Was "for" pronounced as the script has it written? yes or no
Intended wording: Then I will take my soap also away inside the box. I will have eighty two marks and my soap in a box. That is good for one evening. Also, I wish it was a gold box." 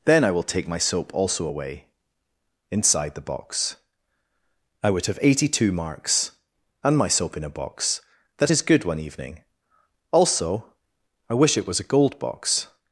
no